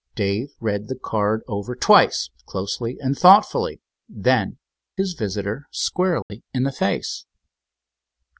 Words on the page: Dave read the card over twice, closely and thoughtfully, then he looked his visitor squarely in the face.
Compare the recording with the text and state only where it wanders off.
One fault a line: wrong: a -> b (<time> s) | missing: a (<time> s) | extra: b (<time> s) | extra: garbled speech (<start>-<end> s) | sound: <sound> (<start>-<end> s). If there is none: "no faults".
missing: he looked (4.6 s)
sound: dropout (6.2-6.3 s)